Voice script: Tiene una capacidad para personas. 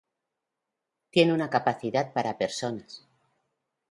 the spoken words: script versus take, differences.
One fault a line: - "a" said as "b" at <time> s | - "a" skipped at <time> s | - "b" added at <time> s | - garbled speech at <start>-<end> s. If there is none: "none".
none